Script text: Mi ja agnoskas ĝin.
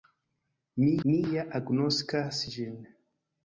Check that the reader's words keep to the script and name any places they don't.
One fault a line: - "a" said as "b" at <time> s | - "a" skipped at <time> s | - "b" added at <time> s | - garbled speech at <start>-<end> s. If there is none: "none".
- "mi" added at 1.1 s